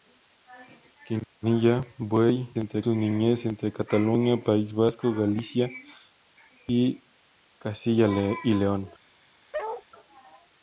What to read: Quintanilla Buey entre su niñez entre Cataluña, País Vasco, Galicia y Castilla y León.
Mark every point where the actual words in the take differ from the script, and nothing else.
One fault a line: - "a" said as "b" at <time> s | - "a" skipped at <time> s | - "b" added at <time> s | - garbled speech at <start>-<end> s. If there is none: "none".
none